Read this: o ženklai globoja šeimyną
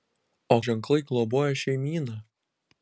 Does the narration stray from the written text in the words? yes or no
no